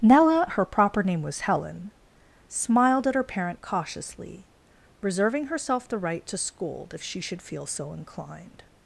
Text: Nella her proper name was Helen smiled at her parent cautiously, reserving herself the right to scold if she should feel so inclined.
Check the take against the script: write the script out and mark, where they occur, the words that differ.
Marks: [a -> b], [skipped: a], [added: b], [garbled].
Nella her proper name was Helen smiled at her parent cautiously, reserving herself the right to scold if she should feel so inclined.